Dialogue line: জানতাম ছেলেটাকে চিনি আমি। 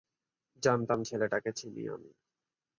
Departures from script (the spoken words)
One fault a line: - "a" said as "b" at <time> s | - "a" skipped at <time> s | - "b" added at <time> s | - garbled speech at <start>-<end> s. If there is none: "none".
none